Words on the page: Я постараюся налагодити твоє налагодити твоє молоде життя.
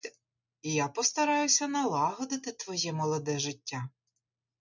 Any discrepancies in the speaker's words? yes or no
yes